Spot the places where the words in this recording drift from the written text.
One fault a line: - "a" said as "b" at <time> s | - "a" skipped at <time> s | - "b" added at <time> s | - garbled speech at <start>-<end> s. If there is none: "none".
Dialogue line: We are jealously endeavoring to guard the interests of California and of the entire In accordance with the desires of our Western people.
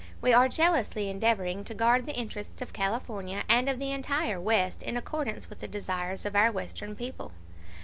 - "West" added at 4.4 s